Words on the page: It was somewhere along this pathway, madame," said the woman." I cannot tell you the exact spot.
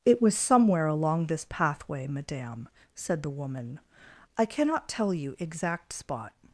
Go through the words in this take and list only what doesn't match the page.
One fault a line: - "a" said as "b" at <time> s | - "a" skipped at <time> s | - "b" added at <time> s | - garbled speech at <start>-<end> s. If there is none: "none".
- "the" skipped at 5.4 s